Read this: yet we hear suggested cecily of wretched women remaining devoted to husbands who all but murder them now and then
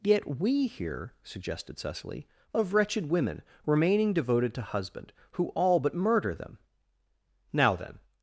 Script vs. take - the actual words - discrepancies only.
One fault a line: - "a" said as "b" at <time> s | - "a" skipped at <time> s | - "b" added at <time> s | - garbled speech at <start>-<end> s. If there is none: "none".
- "husbands" said as "husband" at 4.6 s
- "and" skipped at 7.7 s